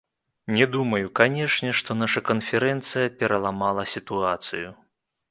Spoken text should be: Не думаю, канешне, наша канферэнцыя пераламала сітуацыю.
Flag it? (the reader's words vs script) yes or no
yes